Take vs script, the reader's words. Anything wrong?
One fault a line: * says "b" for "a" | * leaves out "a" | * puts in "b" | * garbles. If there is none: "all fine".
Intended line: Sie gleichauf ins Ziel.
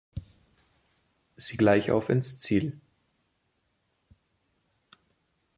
all fine